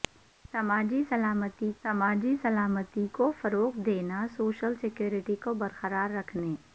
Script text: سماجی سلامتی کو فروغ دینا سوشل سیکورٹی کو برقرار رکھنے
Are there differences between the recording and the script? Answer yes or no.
yes